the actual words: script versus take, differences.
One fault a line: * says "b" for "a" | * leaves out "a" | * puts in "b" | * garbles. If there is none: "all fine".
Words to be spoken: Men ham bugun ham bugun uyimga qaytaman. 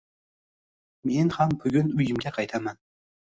* leaves out "ham bugun"